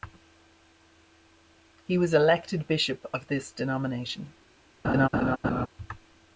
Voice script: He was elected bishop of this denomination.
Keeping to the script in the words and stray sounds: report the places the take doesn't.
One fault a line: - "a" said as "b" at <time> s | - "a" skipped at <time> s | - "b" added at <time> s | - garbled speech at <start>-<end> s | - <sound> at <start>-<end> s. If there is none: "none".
- laugh at 4.8-5.7 s